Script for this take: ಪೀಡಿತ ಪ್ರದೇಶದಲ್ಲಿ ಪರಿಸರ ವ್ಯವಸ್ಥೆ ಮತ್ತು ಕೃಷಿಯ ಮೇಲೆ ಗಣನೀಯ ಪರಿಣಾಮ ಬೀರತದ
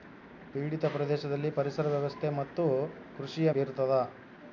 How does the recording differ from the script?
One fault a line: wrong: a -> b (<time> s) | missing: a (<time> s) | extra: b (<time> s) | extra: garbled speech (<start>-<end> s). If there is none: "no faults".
missing: ಮೇಲೆ ಗಣನೀಯ ಪರಿಣಾಮ (3.5 s)